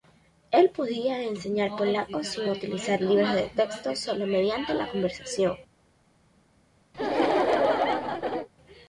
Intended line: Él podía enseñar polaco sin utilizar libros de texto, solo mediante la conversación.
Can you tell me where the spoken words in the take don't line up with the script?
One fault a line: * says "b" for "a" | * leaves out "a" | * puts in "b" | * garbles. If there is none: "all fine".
all fine